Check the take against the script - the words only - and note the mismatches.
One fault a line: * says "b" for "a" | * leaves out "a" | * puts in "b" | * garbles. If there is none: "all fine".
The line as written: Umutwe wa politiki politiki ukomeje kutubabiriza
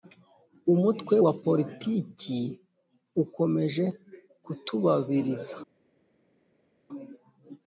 * leaves out "politiki"